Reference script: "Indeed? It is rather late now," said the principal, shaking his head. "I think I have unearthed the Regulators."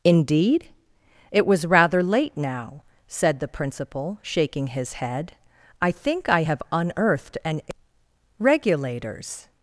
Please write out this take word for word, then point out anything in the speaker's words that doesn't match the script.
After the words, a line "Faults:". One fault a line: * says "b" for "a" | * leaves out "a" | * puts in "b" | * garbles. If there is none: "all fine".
"Indeed? It was rather late now," said the principal, shaking his head. "I think I have unearthed an Regulators."
Faults:
* says "was" for "is"
* says "an" for "the"